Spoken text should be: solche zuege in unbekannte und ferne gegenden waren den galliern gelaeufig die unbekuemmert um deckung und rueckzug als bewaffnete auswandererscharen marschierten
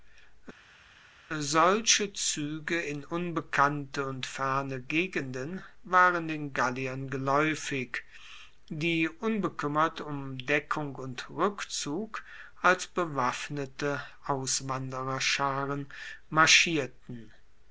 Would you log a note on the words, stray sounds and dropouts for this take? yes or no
no